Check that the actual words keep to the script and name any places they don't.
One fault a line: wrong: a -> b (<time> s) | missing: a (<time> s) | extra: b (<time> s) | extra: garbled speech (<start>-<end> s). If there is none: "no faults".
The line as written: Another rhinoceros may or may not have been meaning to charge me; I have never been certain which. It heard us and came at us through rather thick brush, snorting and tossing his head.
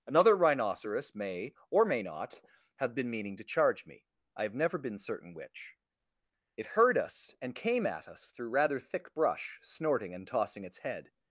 wrong: his -> its (10.6 s)